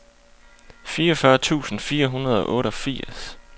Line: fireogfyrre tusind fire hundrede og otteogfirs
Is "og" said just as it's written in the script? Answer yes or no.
yes